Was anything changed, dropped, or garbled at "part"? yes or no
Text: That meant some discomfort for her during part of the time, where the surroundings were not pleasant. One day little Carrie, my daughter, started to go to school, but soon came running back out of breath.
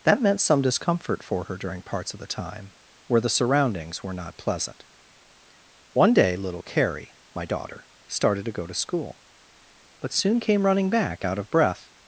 yes